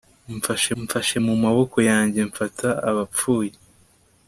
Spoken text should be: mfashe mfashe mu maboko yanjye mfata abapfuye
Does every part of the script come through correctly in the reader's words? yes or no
yes